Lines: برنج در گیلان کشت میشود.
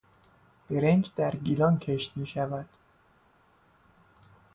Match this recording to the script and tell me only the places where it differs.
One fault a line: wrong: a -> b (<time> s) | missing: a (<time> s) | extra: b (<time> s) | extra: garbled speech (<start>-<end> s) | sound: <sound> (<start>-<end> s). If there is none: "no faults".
no faults